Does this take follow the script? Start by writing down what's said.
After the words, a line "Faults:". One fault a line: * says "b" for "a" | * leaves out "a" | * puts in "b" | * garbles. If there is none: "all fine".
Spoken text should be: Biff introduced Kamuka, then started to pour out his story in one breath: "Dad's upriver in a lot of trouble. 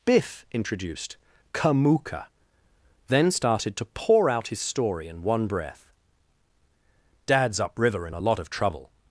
Biff introduced Kamuka, then started to pour out his story in one breath: "Dad's upriver in a lot of trouble.
Faults:
all fine